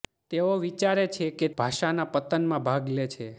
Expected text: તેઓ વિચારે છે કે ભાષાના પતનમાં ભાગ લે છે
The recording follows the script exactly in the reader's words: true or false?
true